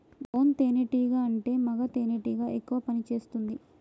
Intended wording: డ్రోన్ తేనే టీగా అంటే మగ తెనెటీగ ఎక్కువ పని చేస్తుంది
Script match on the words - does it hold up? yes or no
yes